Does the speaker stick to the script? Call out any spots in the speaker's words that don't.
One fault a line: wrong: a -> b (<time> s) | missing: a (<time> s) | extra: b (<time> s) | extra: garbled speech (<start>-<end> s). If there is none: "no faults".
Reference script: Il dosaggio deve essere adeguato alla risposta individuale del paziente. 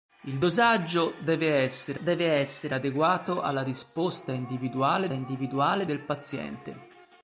extra: deve essere (2.0 s)
extra: individuale (5.1 s)